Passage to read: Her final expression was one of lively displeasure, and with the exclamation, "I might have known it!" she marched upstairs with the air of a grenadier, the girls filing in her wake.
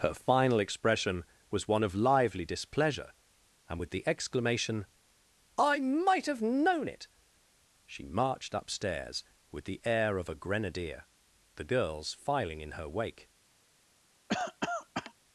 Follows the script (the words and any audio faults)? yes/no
no